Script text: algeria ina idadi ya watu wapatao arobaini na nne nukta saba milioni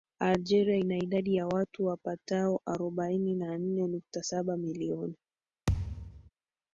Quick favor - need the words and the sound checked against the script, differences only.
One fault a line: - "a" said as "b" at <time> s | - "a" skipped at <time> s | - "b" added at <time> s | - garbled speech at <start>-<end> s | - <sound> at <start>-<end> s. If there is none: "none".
- thud at 5.7-6.3 s